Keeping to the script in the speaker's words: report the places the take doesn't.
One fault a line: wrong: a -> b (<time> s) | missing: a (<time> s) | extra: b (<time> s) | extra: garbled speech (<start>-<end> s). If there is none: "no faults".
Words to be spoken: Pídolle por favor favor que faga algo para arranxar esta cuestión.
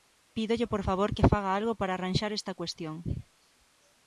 missing: favor (1.1 s)